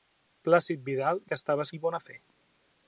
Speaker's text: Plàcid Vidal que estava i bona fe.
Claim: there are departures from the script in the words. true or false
false